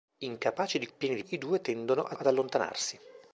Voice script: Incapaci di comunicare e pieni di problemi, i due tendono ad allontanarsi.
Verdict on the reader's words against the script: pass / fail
fail